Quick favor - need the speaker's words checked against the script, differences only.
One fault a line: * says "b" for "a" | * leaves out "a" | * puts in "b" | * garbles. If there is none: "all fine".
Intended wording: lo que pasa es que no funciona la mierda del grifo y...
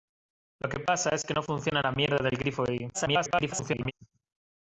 * garbles